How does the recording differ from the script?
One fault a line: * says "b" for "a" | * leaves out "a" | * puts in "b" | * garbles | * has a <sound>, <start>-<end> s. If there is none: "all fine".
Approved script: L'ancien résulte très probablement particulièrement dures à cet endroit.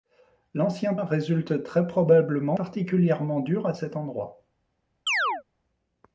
* has a chirp, 5.1-5.4 s